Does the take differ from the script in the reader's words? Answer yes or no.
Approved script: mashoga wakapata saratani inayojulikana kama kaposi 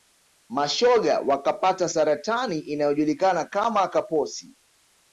no